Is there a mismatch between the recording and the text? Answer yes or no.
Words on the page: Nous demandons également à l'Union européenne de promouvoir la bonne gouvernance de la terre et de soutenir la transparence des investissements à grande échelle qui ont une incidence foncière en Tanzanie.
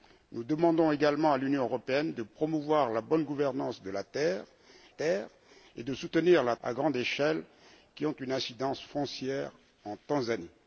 yes